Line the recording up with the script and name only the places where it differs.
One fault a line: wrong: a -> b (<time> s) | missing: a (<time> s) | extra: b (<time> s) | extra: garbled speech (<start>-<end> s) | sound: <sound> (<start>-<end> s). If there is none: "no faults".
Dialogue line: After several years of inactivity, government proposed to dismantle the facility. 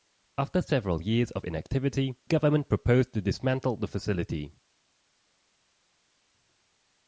no faults